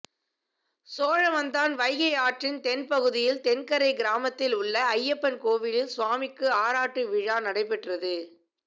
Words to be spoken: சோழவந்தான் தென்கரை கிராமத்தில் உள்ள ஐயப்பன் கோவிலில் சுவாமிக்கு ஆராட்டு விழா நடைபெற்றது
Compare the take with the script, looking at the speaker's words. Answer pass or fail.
fail